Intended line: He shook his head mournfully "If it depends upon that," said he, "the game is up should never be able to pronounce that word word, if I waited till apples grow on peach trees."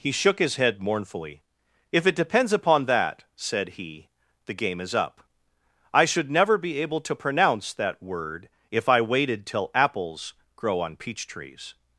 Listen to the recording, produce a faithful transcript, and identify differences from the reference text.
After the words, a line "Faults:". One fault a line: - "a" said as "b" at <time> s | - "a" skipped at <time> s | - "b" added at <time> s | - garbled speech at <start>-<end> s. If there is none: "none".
He shook his head mournfully "If it depends upon that," said he, "the game is up I should never be able to pronounce that word, if I waited till apples grow on peach trees."
Faults:
- "I" added at 5.9 s
- "word" skipped at 8.5 s